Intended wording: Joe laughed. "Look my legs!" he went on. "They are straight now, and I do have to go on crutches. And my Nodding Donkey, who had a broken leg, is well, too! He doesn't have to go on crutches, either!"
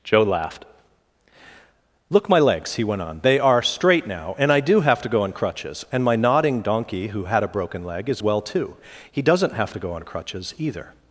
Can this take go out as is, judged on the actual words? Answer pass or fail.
pass